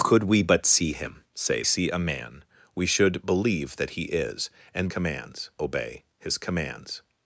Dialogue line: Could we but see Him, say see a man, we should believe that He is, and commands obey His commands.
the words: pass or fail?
pass